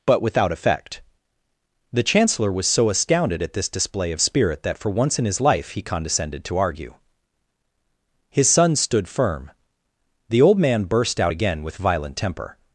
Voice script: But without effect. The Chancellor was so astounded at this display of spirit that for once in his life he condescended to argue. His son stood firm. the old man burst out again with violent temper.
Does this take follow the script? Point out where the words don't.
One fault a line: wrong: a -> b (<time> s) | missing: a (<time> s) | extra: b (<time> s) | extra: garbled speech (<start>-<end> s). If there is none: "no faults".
no faults